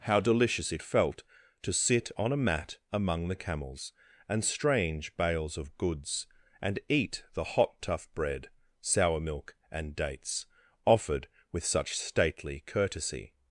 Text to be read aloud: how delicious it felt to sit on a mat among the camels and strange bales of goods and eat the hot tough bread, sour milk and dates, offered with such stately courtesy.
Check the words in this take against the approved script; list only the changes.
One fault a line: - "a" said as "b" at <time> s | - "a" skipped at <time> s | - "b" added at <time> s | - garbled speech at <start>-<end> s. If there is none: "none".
none